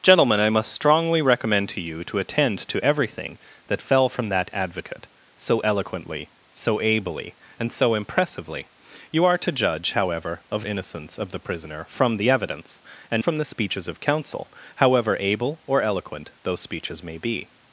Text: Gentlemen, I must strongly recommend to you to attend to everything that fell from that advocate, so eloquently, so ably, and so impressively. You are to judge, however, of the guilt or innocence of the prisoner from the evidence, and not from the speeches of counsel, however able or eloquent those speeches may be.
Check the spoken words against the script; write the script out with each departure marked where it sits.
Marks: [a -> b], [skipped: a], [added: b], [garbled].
Gentlemen, I must strongly recommend to you to attend to everything that fell from that advocate, so eloquently, so ably, and so impressively. You are to judge, however, of [skipped: the guilt or] innocence of the prisoner from the evidence, and [skipped: not] from the speeches of counsel, however able or eloquent those speeches may be.